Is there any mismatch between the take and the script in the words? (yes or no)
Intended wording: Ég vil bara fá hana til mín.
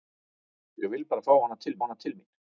yes